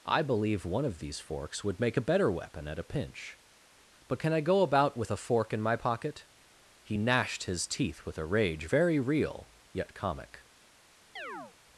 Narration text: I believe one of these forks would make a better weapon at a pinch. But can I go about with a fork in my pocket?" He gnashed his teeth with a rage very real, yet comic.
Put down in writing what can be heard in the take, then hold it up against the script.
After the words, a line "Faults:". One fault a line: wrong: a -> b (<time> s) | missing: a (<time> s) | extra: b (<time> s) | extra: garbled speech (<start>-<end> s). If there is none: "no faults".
I believe one of these forks would make a better weapon at a pinch. But can I go about with a fork in my pocket?" He gnashed his teeth with a rage very real, yet comic.
Faults:
no faults